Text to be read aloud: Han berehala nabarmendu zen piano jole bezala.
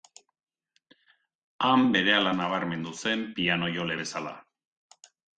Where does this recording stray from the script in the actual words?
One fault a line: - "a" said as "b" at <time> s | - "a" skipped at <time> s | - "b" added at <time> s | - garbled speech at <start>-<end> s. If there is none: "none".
none